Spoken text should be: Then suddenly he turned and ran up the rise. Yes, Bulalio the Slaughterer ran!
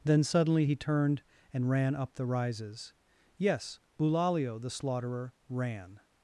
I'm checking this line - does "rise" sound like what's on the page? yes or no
no